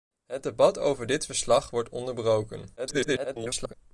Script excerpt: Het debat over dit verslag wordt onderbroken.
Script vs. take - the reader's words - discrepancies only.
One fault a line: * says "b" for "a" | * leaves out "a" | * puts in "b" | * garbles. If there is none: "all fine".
* garbles